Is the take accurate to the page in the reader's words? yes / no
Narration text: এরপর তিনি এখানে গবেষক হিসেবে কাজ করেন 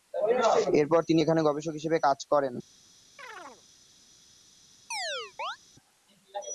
yes